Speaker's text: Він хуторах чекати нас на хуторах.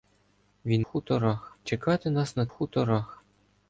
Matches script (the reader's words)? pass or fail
pass